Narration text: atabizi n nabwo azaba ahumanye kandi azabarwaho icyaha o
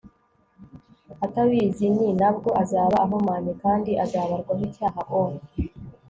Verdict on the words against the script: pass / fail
pass